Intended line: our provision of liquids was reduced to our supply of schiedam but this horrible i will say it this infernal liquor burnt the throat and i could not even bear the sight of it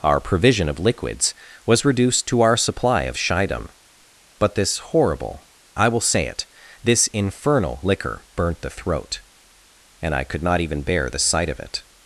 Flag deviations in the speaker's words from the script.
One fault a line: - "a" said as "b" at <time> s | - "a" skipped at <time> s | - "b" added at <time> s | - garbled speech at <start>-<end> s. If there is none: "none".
none